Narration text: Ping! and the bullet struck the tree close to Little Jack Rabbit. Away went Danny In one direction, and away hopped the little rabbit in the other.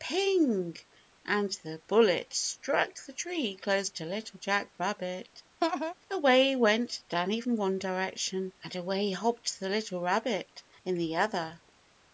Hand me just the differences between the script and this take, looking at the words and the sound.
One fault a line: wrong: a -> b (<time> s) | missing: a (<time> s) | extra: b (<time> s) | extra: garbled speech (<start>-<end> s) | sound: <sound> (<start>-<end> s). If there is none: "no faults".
sound: laugh (5.6-5.9 s)